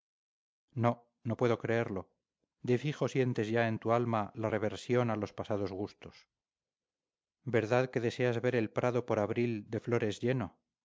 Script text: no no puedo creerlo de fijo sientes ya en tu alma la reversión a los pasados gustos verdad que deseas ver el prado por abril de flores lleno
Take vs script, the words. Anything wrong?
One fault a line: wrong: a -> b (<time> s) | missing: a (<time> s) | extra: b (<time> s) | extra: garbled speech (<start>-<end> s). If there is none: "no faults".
no faults